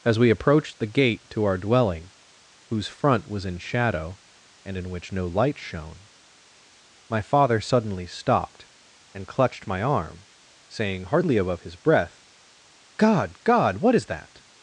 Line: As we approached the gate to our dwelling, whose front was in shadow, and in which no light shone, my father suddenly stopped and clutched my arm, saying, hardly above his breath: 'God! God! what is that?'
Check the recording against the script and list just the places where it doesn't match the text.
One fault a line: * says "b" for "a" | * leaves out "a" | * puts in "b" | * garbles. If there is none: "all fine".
all fine